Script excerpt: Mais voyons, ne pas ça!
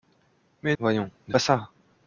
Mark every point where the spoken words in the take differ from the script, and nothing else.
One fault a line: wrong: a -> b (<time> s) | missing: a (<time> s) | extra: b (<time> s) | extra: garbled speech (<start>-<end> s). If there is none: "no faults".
no faults